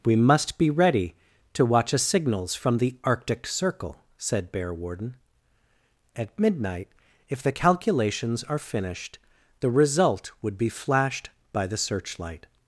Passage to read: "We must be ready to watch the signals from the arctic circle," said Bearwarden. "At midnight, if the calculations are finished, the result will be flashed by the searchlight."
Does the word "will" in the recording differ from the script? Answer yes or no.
yes